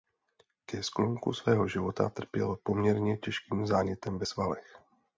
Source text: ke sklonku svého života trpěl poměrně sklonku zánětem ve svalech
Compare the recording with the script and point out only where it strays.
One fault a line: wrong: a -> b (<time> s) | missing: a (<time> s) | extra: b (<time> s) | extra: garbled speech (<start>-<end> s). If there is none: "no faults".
wrong: sklonku -> těžkým (3.2 s)